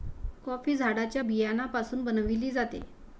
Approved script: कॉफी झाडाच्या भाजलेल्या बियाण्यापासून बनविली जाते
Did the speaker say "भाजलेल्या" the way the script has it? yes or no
no